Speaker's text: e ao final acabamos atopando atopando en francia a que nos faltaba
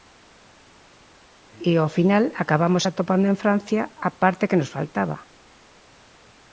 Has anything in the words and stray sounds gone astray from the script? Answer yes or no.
yes